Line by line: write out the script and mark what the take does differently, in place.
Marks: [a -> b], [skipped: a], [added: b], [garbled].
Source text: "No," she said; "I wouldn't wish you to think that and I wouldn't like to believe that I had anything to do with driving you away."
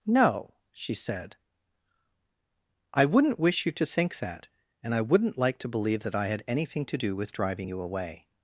"No," she said; "I wouldn't wish you to think that and I wouldn't like to believe that I had anything to do with driving you away."